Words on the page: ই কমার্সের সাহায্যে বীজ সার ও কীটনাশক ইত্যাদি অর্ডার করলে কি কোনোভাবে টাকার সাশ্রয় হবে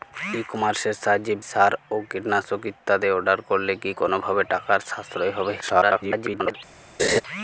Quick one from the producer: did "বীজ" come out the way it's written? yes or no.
no